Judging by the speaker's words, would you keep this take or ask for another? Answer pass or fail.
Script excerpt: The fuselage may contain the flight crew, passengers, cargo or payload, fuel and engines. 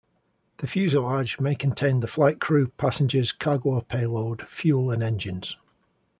pass